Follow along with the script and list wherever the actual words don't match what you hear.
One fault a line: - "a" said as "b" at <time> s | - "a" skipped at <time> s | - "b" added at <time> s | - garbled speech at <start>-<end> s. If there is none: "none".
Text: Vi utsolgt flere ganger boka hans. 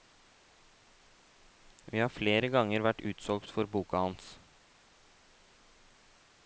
- "utsolgt" said as "har" at 2.0 s
- "vært utsolgt for" added at 2.9 s